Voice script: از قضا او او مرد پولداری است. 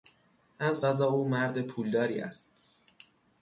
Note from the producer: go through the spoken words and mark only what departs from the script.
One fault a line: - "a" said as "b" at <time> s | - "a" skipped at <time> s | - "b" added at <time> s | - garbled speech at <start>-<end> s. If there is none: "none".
- "او" skipped at 1.3 s